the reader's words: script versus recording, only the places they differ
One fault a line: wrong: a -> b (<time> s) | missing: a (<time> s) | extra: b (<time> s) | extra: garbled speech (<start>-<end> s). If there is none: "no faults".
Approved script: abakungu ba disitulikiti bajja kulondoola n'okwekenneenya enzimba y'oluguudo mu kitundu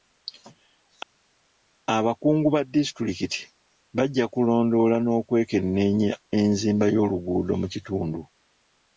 no faults